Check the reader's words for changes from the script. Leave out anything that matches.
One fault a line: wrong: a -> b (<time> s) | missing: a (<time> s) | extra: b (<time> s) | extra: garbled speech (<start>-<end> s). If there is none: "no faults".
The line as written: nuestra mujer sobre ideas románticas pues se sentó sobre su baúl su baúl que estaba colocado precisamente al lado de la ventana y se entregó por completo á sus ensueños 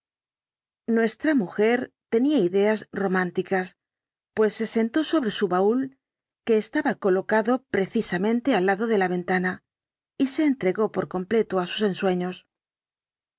wrong: sobre -> tenía (2.1 s)
missing: su baúl (6.0 s)